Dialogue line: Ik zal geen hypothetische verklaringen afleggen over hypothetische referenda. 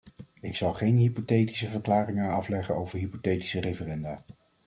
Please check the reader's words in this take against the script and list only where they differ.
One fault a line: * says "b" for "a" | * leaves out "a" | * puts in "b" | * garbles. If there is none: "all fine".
all fine